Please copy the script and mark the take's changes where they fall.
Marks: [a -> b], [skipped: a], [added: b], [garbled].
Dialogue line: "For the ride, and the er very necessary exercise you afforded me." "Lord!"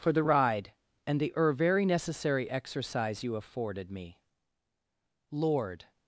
"For the ride, and the er very necessary exercise you afforded me." "Lord!"